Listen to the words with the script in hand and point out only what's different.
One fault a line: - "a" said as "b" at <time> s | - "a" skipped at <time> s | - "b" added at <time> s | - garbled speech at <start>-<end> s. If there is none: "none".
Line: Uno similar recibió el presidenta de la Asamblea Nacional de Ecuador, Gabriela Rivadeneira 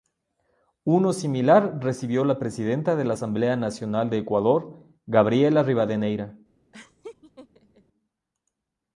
- "el" said as "la" at 2.2 s